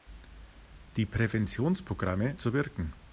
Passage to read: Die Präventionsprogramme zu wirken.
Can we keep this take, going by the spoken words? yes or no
yes